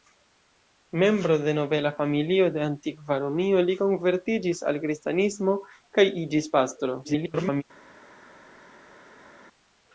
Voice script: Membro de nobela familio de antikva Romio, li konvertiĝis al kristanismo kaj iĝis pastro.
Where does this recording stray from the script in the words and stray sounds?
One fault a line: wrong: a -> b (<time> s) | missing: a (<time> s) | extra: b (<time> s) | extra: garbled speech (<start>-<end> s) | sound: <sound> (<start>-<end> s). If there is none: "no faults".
extra: garbled speech (7.0-7.6 s)